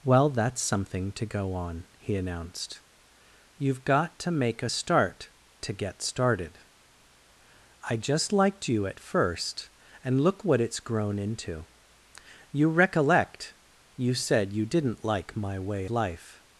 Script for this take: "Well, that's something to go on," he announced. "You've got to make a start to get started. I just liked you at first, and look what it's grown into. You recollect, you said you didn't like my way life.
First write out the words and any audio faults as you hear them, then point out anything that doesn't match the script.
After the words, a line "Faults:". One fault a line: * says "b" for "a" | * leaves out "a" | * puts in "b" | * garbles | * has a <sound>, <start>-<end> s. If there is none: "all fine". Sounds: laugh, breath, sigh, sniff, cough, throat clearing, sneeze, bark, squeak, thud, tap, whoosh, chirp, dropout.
"Well, that's something to go on," he announced. "You've got to make a start to get started. I just liked you at first, and look what it's grown into. You recollect, you said you didn't like my way life.
Faults:
all fine